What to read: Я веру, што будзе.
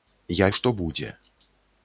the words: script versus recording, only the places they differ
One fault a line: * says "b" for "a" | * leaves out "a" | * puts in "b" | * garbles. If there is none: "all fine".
* leaves out "веру"